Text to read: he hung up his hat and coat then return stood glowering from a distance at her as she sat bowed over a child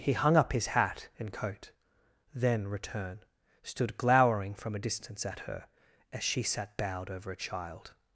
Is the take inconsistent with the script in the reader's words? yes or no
no